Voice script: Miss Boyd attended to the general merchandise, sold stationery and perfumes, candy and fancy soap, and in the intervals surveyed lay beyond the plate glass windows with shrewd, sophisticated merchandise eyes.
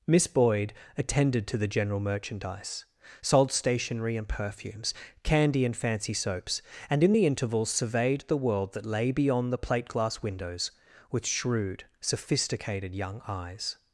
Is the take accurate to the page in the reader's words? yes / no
no